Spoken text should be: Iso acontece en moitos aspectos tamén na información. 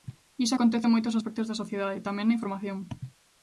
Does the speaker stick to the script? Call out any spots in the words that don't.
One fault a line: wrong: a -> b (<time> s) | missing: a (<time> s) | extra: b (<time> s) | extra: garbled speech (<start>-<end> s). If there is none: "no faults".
extra: da sociedade (1.5 s)